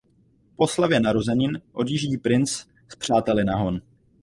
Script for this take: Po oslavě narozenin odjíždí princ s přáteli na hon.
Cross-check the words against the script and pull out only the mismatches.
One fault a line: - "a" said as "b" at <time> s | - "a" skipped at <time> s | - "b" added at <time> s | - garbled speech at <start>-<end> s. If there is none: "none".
none